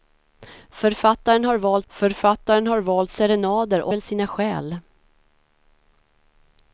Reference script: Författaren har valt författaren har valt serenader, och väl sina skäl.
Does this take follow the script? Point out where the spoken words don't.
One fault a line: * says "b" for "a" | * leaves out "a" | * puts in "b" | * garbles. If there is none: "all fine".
all fine